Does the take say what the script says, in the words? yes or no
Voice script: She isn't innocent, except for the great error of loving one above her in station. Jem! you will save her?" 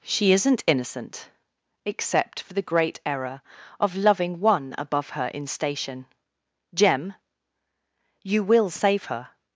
yes